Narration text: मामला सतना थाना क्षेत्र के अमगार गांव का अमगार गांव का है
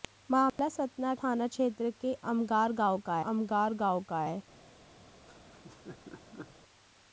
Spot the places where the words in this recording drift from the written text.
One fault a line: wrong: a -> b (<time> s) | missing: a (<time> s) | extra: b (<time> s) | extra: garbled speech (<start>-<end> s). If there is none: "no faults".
no faults